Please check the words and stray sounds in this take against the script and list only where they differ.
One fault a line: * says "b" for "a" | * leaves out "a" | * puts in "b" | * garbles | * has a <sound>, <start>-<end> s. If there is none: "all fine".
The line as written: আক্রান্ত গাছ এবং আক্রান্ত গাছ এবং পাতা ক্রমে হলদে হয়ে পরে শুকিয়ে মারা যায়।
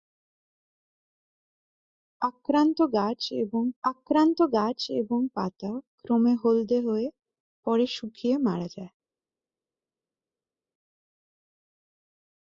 all fine